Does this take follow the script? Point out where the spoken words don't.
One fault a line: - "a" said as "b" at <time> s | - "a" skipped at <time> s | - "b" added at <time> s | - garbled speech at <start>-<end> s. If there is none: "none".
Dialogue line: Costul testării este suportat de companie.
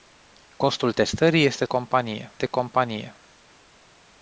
- "suportat" said as "companie" at 1.6 s